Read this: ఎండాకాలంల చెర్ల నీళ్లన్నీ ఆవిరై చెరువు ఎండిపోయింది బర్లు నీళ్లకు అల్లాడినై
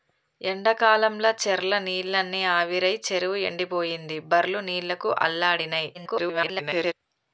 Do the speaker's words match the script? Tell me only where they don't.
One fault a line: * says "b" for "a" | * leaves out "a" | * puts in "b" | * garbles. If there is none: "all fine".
* garbles